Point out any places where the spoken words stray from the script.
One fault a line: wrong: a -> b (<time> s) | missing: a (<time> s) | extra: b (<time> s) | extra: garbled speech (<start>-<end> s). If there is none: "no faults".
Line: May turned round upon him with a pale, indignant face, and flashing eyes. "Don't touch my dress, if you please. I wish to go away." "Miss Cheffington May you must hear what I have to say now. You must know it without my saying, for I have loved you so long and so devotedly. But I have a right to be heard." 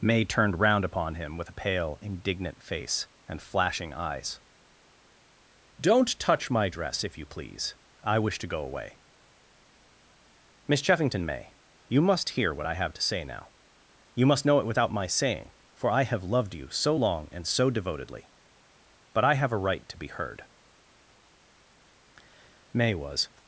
extra: May was (22.7 s)